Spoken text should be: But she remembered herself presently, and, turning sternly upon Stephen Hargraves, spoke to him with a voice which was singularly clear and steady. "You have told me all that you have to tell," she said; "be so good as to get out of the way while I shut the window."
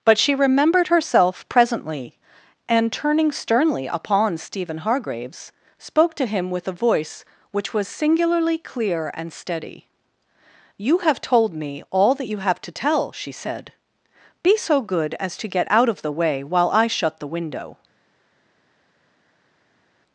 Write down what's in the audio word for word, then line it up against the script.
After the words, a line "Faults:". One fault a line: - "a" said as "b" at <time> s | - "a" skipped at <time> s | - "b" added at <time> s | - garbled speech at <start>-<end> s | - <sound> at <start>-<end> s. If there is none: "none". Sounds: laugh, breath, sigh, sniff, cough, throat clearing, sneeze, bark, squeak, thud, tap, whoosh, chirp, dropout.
But she remembered herself presently, and, turning sternly upon Stephen Hargraves, spoke to him with a voice which was singularly clear and steady. "You have told me all that you have to tell," she said; "be so good as to get out of the way while I shut the window."
Faults:
none